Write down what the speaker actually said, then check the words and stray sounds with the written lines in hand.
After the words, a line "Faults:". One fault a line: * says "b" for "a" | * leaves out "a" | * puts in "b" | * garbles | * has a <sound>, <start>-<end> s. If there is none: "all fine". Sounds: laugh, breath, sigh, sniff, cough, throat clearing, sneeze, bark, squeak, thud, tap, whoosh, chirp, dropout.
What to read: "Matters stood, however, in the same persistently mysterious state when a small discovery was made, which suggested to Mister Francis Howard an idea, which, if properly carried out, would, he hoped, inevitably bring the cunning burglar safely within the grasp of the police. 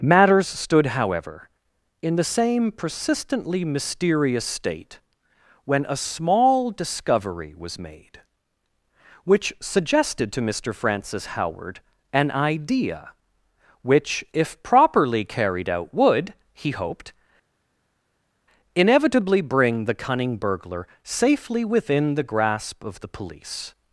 "Matters stood, however, in the same persistently mysterious state when a small discovery was made, which suggested to Mister Francis Howard an idea, which, if properly carried out, would, he hoped, inevitably bring the cunning burglar safely within the grasp of the police.
Faults:
all fine